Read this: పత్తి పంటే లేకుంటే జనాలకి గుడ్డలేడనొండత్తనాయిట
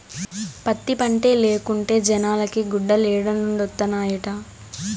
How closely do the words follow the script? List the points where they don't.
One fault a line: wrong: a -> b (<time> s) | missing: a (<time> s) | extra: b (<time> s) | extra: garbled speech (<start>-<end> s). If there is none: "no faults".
no faults